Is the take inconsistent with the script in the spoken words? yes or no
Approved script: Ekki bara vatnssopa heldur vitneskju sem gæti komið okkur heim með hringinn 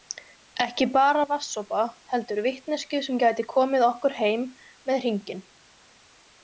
no